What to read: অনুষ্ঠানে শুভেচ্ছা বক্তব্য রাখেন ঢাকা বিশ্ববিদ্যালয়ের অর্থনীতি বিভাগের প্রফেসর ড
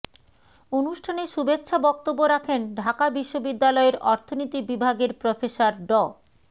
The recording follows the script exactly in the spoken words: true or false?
true